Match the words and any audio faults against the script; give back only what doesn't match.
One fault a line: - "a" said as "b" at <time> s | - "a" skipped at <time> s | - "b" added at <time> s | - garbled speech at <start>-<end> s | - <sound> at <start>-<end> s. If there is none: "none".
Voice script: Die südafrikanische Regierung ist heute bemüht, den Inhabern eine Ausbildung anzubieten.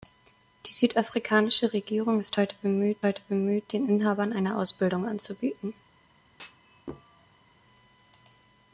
- "heute bemüht" added at 3.0 s
- thud at 6.3-7.5 s